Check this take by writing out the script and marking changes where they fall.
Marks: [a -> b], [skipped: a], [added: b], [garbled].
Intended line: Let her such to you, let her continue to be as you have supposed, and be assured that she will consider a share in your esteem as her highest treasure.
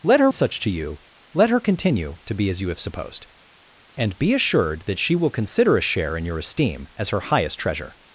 Let her such to you, let her continue to be as you have supposed, and be assured that she will consider a share in your esteem as her highest treasure.